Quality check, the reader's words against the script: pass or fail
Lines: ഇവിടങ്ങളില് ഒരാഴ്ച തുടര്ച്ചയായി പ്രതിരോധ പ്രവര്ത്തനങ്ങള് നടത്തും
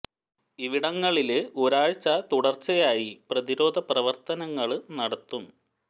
pass